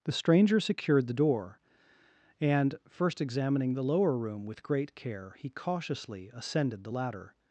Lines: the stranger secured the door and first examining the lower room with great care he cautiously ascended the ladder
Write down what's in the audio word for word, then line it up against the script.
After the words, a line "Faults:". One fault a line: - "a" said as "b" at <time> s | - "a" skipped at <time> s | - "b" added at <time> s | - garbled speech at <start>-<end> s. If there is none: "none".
the stranger secured the door and first examining the lower room with great care he cautiously ascended the ladder
Faults:
none